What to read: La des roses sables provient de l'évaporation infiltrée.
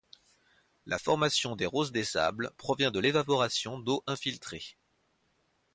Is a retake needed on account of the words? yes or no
yes